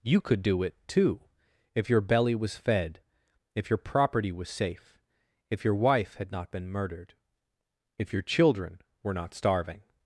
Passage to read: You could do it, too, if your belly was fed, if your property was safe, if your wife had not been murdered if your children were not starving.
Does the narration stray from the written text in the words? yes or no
no